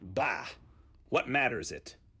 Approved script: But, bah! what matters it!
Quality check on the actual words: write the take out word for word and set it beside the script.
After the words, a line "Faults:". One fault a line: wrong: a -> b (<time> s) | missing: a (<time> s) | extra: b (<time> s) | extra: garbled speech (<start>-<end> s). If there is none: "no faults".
bah! what matters it!
Faults:
missing: But (0.0 s)